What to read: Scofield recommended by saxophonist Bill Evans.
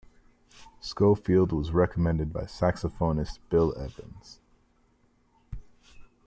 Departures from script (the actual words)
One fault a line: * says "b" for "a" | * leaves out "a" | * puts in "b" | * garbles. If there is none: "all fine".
* puts in "was"